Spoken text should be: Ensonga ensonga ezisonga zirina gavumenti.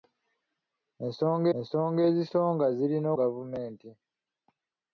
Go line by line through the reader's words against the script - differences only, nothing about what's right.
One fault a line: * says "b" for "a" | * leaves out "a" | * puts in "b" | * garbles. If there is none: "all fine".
all fine